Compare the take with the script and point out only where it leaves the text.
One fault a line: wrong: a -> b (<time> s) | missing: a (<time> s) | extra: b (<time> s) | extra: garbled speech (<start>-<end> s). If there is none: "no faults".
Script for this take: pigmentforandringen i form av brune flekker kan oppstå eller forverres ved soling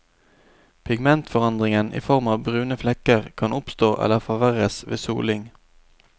no faults